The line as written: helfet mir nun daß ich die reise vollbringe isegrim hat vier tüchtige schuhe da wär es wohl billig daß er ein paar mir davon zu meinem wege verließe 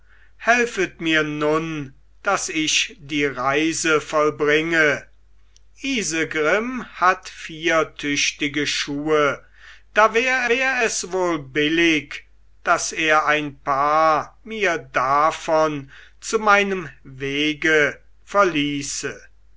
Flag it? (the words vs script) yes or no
yes